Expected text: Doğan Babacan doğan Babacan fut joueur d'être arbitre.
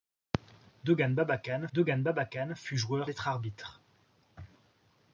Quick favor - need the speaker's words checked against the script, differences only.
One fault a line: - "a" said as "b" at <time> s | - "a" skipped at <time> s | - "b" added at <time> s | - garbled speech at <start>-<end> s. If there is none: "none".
none